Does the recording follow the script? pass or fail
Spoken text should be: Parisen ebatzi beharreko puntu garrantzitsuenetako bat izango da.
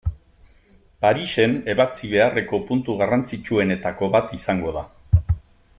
pass